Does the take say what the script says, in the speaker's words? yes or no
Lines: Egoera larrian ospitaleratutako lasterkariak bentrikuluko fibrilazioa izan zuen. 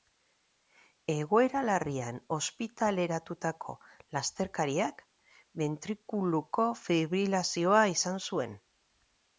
yes